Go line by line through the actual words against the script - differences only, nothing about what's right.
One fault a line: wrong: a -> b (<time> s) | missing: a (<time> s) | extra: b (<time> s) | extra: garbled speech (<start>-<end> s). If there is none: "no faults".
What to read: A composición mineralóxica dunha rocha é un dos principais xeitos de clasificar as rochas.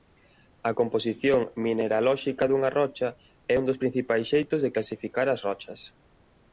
no faults